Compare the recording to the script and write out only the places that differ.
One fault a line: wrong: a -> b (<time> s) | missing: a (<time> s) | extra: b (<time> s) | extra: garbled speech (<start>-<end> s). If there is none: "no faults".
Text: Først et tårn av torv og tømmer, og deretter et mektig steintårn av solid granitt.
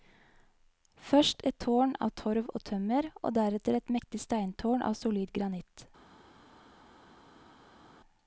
no faults